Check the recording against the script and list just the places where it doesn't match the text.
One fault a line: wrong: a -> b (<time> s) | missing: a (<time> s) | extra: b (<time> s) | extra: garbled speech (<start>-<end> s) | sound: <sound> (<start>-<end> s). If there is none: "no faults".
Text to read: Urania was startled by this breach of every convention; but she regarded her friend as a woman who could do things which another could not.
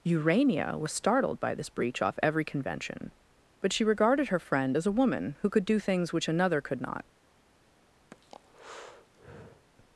wrong: of -> off (2.0 s)
sound: breath (8.1-9.7 s)